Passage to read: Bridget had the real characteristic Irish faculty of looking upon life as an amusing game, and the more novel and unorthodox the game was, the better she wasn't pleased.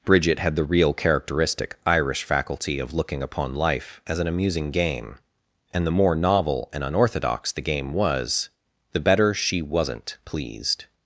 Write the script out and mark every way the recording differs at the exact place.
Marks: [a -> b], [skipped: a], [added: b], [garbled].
Bridget had the real characteristic Irish faculty of looking upon life as an amusing game, and the more novel and unorthodox the game was, the better she wasn't pleased.